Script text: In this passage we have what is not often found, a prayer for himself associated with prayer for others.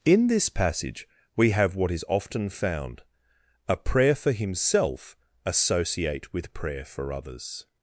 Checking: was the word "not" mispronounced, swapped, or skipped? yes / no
yes